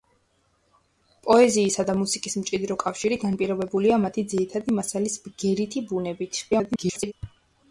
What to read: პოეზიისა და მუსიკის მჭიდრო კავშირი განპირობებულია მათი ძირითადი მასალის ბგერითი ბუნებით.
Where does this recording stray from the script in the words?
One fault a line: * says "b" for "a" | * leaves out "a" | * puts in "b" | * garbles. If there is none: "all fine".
* garbles